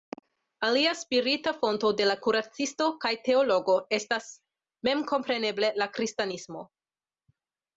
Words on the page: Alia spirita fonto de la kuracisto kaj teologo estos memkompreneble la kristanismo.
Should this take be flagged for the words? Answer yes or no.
yes